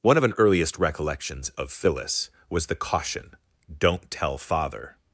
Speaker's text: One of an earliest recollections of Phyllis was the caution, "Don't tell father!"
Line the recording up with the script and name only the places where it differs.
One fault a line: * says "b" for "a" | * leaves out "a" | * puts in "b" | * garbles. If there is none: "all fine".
all fine